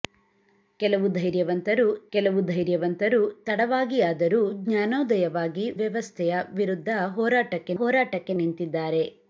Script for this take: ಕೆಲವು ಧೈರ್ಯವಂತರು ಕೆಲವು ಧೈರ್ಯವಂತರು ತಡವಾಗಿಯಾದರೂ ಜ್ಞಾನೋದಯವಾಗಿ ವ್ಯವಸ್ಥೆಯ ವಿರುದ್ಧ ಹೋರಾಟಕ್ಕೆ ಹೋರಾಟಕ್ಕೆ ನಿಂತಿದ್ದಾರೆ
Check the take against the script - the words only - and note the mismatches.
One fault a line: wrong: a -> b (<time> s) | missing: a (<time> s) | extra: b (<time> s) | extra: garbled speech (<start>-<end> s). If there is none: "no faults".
no faults